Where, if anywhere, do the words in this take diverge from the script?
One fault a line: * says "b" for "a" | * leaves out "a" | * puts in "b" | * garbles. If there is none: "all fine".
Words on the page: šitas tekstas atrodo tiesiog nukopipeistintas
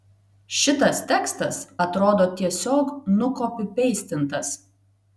all fine